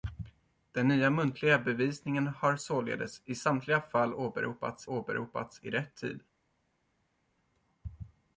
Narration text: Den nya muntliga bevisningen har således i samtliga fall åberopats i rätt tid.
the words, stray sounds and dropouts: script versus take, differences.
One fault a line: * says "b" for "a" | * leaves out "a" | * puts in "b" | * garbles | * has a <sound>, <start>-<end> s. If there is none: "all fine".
* puts in "åberopats"